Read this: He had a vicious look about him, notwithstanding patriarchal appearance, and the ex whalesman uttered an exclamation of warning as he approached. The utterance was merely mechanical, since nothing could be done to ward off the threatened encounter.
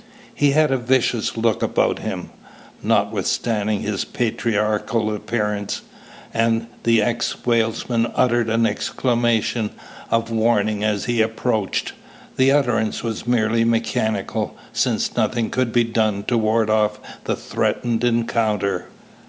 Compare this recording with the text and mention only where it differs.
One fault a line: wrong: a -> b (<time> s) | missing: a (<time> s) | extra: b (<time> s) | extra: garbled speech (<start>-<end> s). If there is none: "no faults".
extra: his (3.8 s)